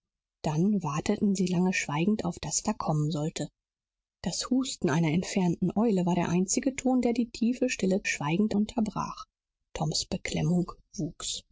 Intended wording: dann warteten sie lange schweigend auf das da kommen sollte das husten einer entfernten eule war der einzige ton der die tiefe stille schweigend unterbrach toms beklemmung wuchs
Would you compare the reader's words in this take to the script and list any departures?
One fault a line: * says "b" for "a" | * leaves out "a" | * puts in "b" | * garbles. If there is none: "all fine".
all fine